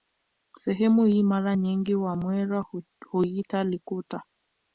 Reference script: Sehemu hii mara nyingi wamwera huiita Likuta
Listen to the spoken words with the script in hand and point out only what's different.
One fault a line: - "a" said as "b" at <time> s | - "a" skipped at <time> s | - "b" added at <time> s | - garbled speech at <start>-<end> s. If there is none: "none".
none